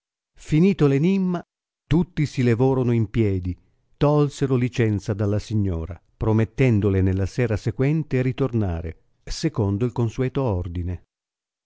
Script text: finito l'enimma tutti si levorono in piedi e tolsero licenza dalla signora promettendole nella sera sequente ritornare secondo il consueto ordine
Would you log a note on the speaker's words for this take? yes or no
yes